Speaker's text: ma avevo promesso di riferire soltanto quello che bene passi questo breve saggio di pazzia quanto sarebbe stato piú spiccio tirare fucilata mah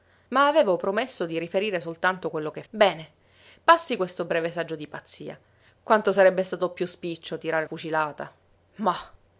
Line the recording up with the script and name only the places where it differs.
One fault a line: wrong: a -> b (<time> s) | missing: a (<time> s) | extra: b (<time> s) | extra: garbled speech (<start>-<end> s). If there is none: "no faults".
no faults